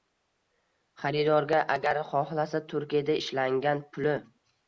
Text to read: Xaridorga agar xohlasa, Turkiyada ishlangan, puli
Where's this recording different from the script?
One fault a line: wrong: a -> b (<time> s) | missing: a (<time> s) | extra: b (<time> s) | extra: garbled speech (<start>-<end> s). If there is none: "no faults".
no faults